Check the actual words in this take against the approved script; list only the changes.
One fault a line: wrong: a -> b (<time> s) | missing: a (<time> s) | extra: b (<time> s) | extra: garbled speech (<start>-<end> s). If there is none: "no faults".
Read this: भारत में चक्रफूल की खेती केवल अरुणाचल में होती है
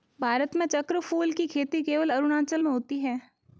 no faults